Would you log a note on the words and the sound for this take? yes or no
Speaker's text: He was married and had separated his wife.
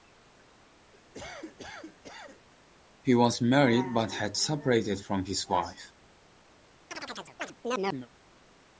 yes